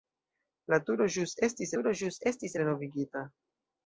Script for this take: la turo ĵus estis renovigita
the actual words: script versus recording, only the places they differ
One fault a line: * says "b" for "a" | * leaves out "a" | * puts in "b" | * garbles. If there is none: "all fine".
* puts in "turo ĵus estis"